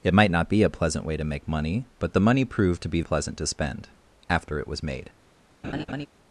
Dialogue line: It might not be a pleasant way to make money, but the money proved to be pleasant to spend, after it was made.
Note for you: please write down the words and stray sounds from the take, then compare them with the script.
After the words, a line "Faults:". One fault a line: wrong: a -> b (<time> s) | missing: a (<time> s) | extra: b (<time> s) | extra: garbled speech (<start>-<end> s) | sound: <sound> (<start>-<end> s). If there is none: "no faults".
It might not be a pleasant way to make money, but the money proved to be pleasant to spend, after it was made.
Faults:
sound: laugh (5.6-6.1 s)